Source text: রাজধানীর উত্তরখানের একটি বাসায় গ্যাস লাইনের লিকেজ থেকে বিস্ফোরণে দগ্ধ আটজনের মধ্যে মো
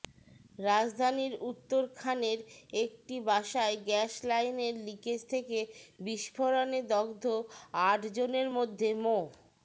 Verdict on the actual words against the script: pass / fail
pass